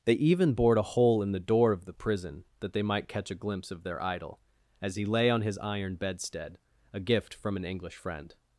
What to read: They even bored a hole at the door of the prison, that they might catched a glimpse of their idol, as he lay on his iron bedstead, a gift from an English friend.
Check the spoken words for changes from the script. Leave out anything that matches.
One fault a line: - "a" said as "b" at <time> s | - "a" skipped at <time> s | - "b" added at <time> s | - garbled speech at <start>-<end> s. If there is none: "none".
- "at" said as "in" at 1.2 s
- "catched" said as "catch" at 3.1 s